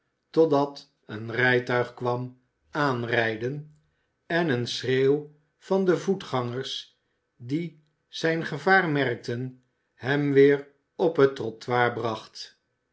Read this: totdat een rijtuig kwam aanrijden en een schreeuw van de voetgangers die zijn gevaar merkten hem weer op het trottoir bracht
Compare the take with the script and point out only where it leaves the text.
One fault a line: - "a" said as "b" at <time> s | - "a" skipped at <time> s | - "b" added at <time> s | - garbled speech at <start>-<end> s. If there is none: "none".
none